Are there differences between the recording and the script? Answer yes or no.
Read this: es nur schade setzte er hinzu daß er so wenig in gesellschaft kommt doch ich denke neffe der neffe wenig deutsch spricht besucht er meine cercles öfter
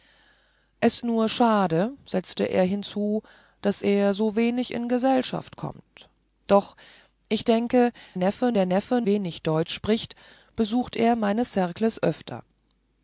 no